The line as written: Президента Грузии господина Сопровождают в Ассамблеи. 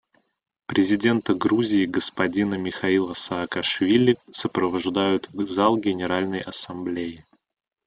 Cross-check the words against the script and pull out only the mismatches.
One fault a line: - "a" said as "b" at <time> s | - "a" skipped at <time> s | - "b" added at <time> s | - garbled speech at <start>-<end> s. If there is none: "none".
- "Михаила Саакашвили" added at 2.5 s
- "зал Генеральной" added at 5.5 s